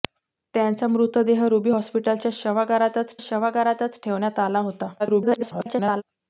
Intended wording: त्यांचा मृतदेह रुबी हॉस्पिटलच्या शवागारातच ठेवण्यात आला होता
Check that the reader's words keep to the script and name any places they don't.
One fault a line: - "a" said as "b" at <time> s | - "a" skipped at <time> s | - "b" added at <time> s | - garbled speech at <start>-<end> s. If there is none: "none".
- "शवागारातच" added at 3.2 s
- garbled speech at 5.0-6.0 s